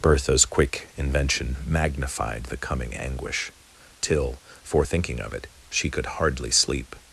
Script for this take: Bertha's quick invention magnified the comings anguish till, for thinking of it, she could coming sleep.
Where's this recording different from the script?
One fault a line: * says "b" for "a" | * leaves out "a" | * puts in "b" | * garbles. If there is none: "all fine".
* says "coming" for "comings"
* says "hardly" for "coming"